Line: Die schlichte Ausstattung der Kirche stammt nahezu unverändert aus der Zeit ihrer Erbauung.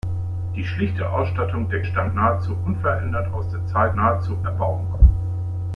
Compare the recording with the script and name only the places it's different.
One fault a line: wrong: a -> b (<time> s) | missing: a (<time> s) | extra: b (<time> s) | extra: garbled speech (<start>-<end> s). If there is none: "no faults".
missing: Kirche (1.9 s)
wrong: ihrer -> nahezu (4.0 s)